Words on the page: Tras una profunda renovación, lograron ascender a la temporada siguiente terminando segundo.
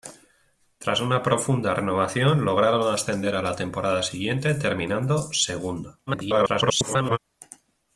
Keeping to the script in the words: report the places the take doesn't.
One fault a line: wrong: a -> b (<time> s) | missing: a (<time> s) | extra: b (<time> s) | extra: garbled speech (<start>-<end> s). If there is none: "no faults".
extra: garbled speech (6.1-7.2 s)